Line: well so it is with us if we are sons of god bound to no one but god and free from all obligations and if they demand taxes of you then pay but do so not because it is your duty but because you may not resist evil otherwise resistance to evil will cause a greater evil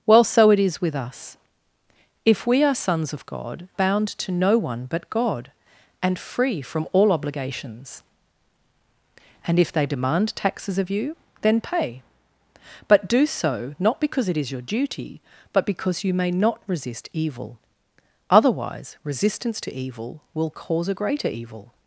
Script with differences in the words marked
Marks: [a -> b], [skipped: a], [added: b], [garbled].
well so it is with us if we are sons of god bound to no one but god and free from all obligations and if they demand taxes of you then pay but do so not because it is your duty but because you may not resist evil otherwise resistance to evil will cause a greater evil